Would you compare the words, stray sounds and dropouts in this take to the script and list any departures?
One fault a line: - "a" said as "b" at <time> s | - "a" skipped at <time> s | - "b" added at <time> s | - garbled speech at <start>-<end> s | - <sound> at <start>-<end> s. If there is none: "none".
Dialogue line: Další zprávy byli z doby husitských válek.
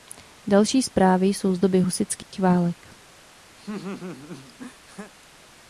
- "byli" said as "jsou" at 1.3 s
- dropout at 2.2-2.3 s
- laugh at 3.6-5.1 s